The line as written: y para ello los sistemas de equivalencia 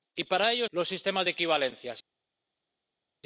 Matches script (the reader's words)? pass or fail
pass